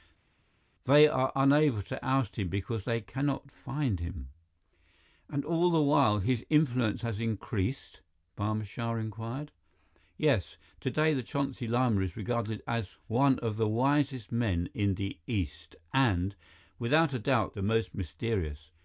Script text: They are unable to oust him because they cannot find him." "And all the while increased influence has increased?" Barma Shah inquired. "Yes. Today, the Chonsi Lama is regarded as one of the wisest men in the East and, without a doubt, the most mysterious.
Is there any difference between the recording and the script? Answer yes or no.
yes